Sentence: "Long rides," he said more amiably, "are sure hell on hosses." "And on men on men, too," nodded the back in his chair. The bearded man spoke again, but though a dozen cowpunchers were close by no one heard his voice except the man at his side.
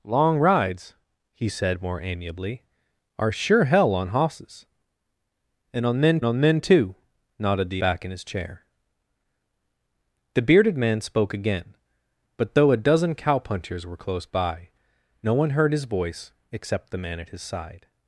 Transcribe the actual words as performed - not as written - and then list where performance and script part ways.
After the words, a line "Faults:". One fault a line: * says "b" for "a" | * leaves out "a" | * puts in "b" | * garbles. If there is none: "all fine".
"Long rides," he said more amiably, "are sure hell on hosses." "And on men on men, too," nodded the back in his chair. The bearded man spoke again, but though a dozen cowpunchers were close by no one heard his voice except the man at his side.
Faults:
all fine